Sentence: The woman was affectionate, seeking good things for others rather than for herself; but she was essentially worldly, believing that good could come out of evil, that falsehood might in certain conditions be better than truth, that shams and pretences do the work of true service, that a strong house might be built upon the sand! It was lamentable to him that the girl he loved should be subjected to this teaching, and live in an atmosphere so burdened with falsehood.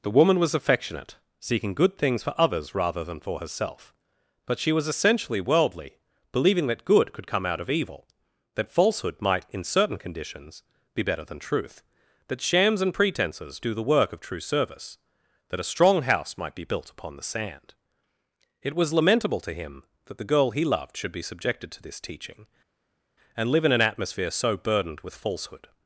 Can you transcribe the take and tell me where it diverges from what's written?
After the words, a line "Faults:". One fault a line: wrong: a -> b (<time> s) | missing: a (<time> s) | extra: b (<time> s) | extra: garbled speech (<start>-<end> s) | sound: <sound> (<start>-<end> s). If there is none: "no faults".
The woman was affectionate, seeking good things for others rather than for herself; but she was essentially worldly, believing that good could come out of evil, that falsehood might in certain conditions be better than truth, that shams and pretences do the work of true service, that a strong house might be built upon the sand! It was lamentable to him that the girl he loved should be subjected to this teaching, and live in an atmosphere so burdened with falsehood.
Faults:
no faults